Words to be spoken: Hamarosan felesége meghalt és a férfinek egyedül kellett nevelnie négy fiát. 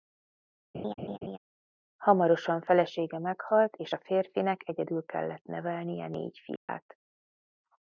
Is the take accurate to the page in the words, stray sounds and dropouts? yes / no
no